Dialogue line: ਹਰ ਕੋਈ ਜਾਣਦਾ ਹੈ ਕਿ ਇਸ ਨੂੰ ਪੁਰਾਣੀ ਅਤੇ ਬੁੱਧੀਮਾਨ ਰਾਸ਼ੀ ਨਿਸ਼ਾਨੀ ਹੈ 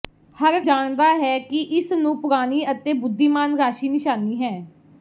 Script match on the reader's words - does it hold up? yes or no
no